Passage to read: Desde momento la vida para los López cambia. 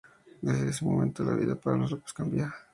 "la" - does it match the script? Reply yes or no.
yes